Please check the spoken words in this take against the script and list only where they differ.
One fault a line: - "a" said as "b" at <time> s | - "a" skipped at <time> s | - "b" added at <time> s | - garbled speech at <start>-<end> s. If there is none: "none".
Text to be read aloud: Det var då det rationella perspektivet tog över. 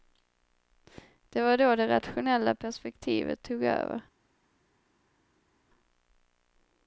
none